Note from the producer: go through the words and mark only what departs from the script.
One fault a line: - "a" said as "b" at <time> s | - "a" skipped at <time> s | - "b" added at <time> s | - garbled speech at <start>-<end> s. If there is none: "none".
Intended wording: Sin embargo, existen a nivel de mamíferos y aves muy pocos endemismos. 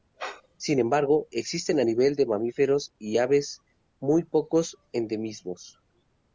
none